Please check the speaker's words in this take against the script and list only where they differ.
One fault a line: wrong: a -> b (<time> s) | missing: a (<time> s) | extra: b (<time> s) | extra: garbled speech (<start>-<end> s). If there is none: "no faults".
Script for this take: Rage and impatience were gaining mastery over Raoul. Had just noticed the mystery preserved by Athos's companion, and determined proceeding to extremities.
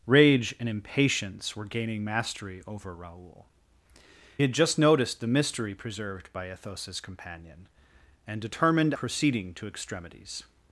no faults